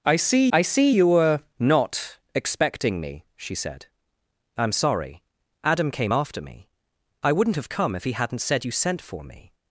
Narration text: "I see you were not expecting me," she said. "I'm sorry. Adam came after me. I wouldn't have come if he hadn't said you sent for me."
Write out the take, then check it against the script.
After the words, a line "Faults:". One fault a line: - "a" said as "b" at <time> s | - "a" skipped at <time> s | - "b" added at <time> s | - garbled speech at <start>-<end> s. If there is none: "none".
"I see I see you were not expecting me," she said. "I'm sorry. Adam came after me. I wouldn't have come if he hadn't said you sent for me."
Faults:
- "I see" added at 0.5 s